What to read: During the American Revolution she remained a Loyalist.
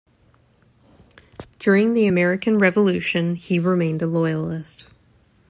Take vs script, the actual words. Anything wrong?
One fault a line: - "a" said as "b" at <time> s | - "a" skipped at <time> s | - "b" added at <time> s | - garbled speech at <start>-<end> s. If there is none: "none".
- "she" said as "he" at 3.3 s